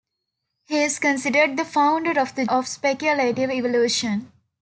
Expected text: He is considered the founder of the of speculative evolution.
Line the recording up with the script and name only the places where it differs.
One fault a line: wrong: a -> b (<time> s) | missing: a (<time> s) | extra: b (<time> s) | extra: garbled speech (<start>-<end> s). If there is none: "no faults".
no faults